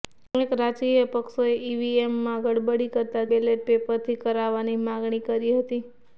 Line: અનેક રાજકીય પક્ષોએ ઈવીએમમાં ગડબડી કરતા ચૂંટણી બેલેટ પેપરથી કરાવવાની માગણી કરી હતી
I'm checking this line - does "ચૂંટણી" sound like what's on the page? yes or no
no